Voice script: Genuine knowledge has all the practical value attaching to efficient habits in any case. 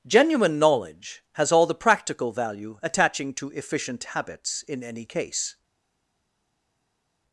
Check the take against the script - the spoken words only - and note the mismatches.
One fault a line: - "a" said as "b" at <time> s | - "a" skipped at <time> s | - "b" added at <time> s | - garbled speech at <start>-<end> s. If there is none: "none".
none